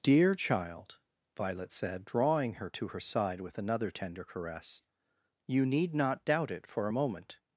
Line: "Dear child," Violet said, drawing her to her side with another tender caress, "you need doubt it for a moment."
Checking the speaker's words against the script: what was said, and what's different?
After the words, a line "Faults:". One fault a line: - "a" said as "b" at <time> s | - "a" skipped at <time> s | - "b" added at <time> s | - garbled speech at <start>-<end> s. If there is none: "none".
"Dear child," Violet said, drawing her to her side with another tender caress, "you need not doubt it for a moment."
Faults:
- "not" added at 5.9 s